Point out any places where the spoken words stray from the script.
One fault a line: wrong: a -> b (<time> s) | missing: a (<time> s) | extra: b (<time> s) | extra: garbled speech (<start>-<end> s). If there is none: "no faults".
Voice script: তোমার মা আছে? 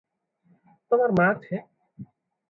no faults